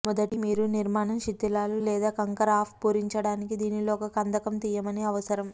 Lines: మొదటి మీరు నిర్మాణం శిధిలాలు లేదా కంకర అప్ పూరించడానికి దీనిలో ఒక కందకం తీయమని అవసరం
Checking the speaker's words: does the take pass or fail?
pass